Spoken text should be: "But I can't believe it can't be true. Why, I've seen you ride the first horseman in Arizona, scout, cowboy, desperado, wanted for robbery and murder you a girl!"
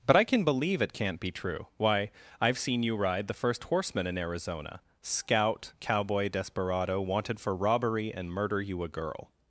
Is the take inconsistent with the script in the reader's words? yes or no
yes